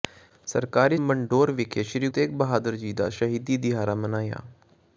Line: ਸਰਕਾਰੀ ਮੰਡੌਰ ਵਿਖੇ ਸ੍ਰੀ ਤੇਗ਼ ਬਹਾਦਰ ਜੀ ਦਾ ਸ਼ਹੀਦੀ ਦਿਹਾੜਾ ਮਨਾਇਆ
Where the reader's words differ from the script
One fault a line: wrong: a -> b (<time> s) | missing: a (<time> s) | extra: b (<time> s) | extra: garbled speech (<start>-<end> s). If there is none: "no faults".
no faults